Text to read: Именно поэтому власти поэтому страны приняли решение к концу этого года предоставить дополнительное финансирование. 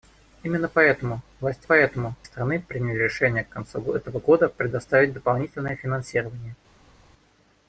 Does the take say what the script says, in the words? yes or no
yes